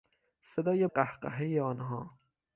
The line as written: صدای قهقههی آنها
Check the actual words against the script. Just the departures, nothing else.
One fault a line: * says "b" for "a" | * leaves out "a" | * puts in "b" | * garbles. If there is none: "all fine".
all fine